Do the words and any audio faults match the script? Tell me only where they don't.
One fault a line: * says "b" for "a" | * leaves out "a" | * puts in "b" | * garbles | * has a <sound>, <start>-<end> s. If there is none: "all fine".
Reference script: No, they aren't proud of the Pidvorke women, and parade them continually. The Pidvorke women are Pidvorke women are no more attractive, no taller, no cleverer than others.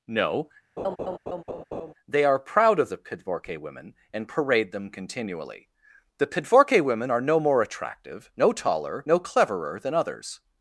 * has a laugh, 0.8-1.9 s
* says "are" for "aren't"
* leaves out "Pidvorke women are"